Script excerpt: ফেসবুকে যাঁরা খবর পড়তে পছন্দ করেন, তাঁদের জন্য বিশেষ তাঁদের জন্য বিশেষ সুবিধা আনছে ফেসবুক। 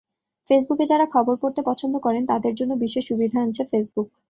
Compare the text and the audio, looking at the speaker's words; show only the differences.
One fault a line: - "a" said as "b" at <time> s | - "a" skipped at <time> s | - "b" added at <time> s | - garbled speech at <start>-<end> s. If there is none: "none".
- "তাঁদের জন্য বিশেষ" skipped at 3.0 s